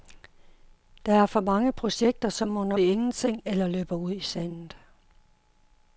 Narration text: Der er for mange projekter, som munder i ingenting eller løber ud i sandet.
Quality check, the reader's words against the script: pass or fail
pass